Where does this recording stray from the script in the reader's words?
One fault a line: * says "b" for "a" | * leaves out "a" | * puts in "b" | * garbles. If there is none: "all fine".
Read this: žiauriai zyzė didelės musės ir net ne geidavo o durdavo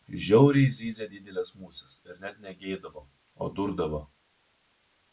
all fine